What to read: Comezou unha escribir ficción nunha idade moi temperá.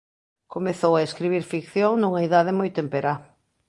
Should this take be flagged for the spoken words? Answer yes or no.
yes